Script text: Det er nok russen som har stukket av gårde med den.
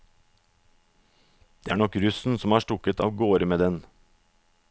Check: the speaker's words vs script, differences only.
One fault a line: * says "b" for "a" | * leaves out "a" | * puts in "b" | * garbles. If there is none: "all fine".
all fine